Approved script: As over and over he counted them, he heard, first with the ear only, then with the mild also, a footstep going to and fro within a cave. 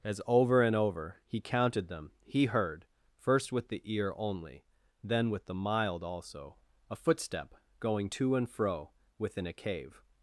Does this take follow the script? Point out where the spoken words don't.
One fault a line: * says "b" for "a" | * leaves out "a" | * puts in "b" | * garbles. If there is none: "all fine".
all fine